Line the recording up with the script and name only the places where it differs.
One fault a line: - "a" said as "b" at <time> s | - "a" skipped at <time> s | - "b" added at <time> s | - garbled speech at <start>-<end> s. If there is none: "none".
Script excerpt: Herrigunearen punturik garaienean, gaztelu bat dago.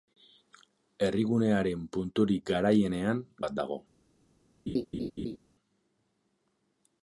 - "gaztelu" skipped at 3.2 s